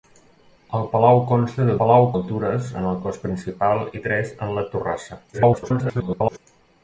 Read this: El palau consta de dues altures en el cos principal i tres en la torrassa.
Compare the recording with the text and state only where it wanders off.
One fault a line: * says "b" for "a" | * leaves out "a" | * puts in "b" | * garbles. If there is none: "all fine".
* says "palau" for "dues"
* garbles